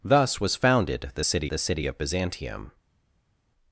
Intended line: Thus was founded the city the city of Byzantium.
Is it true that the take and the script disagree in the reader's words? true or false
false